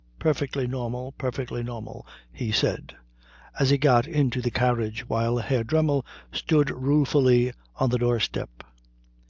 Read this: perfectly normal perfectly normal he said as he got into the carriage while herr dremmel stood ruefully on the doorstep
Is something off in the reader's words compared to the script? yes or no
no